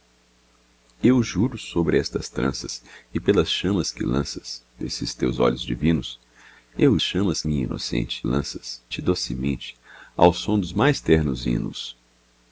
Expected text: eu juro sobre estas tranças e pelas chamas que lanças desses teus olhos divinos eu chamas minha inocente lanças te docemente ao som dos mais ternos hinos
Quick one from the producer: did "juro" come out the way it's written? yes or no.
yes